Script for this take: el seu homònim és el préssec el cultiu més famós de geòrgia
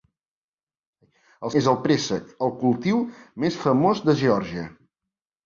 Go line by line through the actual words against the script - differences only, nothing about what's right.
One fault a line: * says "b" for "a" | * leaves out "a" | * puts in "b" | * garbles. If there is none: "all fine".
* leaves out "seu homònim"